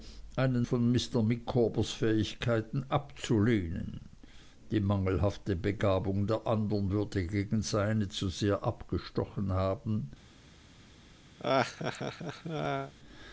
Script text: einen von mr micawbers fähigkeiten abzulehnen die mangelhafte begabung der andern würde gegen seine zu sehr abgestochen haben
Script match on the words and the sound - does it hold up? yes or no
no